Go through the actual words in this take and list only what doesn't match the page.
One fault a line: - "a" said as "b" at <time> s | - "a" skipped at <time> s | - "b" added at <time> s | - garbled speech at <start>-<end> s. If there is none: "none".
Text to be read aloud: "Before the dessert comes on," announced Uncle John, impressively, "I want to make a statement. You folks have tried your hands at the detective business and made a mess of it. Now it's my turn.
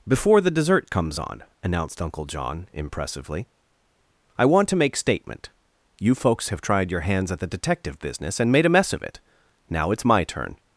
- "a" skipped at 5.0 s